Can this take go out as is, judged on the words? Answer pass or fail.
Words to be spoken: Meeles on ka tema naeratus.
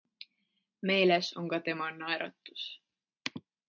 pass